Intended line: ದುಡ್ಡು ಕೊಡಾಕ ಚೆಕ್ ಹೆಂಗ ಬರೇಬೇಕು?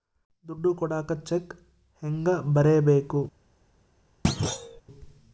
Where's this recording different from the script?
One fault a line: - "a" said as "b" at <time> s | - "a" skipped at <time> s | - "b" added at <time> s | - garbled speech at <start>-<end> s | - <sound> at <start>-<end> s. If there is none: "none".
- thud at 4.2-4.8 s